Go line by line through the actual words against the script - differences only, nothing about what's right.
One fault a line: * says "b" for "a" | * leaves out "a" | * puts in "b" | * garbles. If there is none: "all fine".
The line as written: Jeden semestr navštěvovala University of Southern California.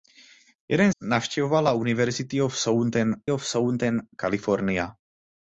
* leaves out "semestr"
* puts in "of Southern"